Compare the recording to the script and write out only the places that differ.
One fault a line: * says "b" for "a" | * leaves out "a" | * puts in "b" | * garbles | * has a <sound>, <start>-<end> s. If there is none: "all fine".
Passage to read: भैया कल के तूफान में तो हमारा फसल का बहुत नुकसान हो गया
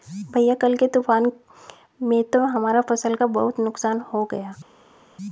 all fine